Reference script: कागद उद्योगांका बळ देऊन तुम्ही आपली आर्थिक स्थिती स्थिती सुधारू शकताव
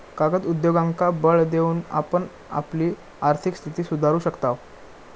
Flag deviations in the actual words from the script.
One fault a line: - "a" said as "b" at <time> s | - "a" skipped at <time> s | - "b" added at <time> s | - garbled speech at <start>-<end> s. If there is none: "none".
- "तुम्ही" said as "आपण" at 1.9 s
- "स्थिती" skipped at 3.8 s